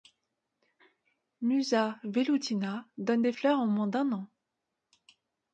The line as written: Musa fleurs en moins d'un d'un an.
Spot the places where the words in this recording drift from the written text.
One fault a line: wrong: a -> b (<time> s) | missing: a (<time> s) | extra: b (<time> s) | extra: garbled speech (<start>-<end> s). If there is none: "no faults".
extra: velutina donne des (2.0 s)
missing: d'un (4.1 s)